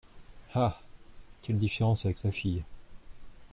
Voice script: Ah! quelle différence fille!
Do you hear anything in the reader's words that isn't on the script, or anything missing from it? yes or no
yes